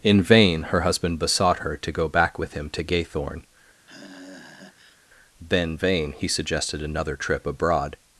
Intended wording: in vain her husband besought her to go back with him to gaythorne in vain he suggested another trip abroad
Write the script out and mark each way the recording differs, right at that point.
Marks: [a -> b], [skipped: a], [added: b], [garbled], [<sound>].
in vain her husband besought her to go back with him to gaythorne [sigh] [in -> then] vain he suggested another trip abroad